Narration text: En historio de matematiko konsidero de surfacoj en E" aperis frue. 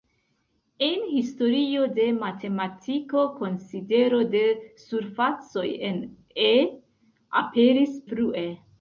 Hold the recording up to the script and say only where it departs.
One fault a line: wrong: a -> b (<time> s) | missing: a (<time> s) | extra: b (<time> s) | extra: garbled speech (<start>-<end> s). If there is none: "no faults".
no faults